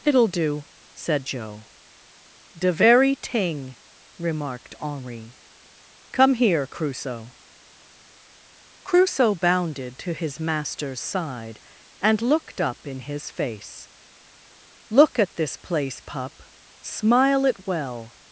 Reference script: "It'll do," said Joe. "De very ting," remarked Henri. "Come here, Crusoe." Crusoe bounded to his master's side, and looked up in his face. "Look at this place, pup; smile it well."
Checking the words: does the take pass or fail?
pass